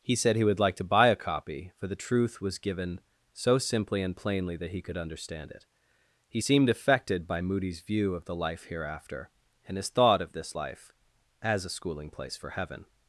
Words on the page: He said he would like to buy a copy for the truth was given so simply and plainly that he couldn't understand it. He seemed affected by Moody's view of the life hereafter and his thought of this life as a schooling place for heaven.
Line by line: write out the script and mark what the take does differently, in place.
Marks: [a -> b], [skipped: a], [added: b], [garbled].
He said he would like to buy a copy for the truth was given so simply and plainly that he [couldn't -> could] understand it. He seemed affected by Moody's view of the life hereafter and his thought of this life as a schooling place for heaven.